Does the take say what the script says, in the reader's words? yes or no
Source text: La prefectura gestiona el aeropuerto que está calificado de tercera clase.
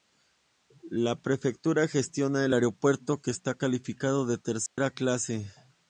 yes